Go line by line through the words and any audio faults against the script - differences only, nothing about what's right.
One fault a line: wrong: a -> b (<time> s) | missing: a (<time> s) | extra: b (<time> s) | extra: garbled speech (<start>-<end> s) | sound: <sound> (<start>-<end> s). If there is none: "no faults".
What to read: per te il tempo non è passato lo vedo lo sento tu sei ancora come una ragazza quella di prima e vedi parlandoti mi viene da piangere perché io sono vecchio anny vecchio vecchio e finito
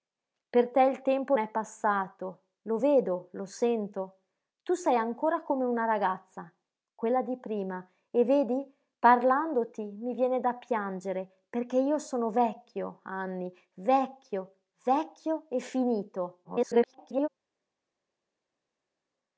missing: non (1.4 s)
extra: garbled speech (16.4-17.3 s)